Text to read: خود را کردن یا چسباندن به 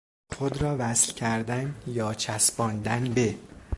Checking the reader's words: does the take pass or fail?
fail